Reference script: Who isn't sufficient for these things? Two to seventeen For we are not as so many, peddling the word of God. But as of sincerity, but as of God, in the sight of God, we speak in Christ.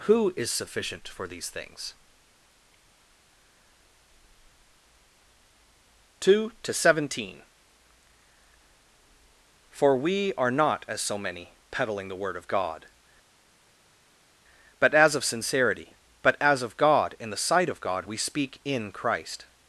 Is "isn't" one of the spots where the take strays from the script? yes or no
yes